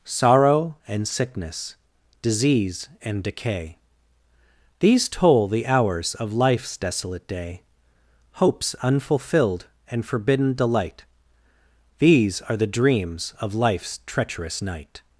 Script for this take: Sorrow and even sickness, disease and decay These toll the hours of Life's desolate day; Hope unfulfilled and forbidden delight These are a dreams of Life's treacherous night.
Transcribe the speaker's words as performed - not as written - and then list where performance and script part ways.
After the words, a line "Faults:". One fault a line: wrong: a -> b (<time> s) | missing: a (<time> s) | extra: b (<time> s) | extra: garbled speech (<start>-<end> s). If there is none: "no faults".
Sorrow and sickness, disease and decay These toll the hours of Life's desolate day; Hopes unfulfilled and forbidden delight These are the dreams of Life's treacherous night.
Faults:
missing: even (1.1 s)
wrong: Hope -> Hopes (8.3 s)
wrong: a -> the (12.6 s)